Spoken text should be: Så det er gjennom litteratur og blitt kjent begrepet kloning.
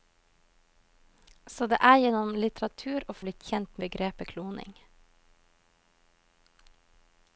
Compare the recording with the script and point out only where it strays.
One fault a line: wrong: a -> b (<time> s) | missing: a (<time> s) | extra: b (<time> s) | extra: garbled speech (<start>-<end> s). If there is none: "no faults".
no faults